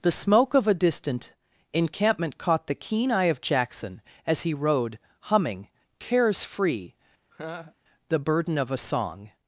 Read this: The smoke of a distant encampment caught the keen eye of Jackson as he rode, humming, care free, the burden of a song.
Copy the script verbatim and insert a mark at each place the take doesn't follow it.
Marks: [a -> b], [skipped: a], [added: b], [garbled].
The smoke of a distant encampment caught the keen eye of Jackson as he rode, humming, [care -> cares] free, the burden of a song.